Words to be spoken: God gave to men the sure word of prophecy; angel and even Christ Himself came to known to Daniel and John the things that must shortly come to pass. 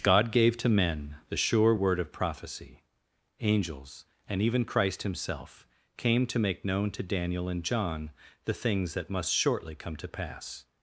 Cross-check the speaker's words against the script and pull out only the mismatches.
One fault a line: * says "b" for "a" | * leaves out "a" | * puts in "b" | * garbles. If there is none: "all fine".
* says "angels" for "angel"
* puts in "make"